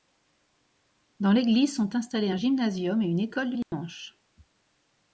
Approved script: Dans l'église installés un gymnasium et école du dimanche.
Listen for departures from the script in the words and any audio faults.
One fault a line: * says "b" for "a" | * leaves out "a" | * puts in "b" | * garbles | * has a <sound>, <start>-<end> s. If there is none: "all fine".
* puts in "sont"
* puts in "une"
* has a dropout, 3.6-3.7 s